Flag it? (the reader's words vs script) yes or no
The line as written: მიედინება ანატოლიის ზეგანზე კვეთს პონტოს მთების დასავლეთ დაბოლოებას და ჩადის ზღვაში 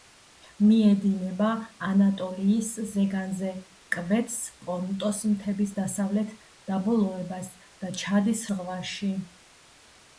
no